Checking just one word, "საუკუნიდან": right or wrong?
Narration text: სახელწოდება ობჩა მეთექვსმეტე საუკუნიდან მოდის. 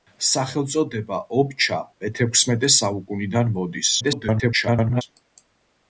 right